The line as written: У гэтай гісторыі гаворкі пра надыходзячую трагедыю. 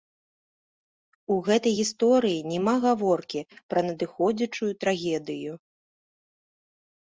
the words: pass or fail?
fail